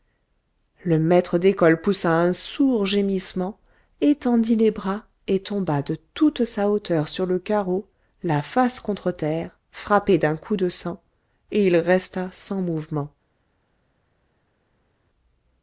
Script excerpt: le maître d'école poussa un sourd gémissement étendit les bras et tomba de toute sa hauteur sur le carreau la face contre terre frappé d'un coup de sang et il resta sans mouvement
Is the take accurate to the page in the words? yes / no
yes